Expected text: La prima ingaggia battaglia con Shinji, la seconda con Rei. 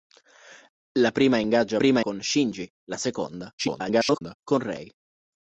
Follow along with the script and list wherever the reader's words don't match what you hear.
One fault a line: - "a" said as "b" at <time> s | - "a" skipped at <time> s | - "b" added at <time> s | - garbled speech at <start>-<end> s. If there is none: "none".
- "battaglia" said as "prima" at 1.7 s
- garbled speech at 3.6-4.4 s